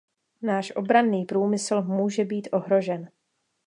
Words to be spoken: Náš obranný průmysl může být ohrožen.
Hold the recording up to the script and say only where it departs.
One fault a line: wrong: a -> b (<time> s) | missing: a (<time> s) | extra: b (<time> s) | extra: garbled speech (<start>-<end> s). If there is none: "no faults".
no faults